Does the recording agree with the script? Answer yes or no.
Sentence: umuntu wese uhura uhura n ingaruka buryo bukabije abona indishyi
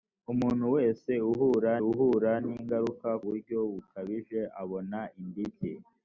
yes